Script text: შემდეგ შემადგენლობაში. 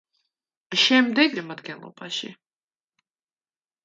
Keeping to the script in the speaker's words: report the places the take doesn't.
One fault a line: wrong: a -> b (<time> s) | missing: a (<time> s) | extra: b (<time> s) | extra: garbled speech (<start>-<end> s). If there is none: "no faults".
no faults